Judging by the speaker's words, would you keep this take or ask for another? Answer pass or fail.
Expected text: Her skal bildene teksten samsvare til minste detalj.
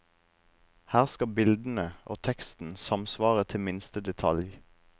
fail